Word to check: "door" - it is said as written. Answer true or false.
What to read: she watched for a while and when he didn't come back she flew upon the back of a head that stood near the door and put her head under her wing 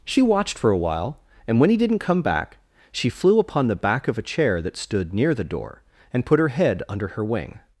true